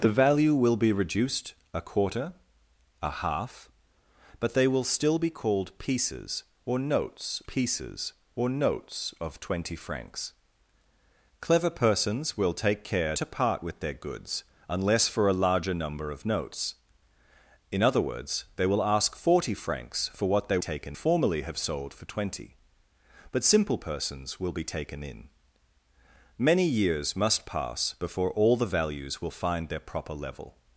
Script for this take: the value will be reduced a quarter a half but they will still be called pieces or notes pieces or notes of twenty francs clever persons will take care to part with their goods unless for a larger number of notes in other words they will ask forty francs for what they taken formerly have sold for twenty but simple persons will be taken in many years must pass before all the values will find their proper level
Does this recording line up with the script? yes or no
yes